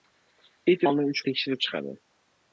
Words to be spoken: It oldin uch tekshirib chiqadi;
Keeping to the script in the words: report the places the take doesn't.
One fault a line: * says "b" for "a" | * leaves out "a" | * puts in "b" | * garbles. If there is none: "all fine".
all fine